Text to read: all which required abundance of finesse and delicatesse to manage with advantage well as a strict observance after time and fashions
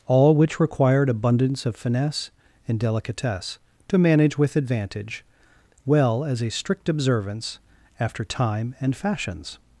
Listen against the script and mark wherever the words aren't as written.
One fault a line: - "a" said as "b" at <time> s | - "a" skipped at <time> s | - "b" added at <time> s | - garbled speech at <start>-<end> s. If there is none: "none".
none